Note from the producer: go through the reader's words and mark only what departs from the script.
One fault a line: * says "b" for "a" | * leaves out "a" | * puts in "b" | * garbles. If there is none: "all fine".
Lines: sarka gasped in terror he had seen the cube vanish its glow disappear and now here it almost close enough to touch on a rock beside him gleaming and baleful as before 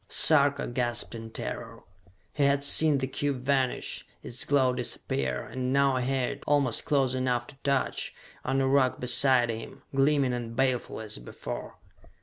all fine